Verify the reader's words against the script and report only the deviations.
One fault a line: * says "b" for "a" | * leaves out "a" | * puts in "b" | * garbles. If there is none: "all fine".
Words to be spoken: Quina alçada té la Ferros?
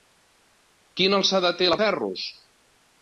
all fine